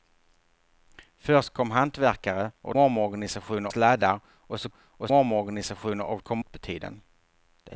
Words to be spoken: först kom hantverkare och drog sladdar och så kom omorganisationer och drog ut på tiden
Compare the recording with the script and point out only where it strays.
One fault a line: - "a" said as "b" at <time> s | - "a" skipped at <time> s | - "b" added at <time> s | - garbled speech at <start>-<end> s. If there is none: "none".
- "drog" said as "omorganisationer" at 2.8 s
- "kom" said as "och" at 4.8 s
- "drog" said as "kom" at 6.2 s